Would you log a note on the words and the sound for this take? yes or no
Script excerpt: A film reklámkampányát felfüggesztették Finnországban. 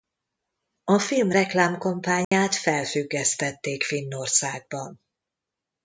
yes